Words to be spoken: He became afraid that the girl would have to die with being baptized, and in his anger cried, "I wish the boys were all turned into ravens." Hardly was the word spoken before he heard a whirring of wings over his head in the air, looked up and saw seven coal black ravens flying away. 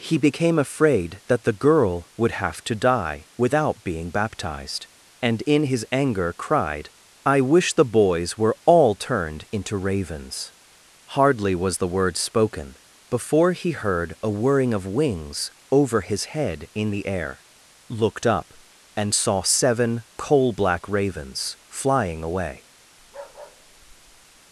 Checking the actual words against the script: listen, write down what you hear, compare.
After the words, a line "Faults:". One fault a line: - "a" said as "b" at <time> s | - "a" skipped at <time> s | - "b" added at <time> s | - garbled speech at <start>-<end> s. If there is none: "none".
He became afraid that the girl would have to die without being baptized, and in his anger cried, "I wish the boys were all turned into ravens." Hardly was the word spoken before he heard a whirring of wings over his head in the air, looked up and saw seven coal black ravens flying away.
Faults:
- "with" said as "without" at 3.4 s